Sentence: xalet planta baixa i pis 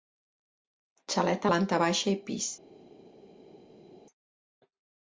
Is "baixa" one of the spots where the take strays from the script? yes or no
no